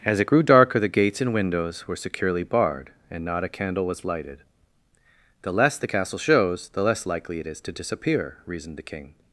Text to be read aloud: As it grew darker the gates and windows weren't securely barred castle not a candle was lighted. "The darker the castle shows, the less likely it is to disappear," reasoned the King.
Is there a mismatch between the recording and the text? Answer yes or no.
yes